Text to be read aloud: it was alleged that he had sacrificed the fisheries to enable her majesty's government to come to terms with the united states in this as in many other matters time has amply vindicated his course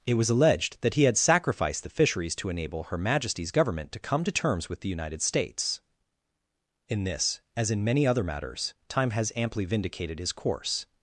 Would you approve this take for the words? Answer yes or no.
yes